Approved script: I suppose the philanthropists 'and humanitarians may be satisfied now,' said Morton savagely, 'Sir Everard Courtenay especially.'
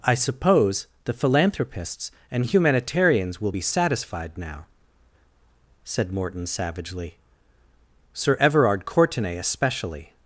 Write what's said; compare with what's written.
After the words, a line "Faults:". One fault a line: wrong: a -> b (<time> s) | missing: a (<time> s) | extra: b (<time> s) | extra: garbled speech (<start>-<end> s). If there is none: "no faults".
I suppose the philanthropists 'and humanitarians will be satisfied now,' said Morton savagely, 'Sir Everard Courtenay especially.'
Faults:
wrong: may -> will (3.4 s)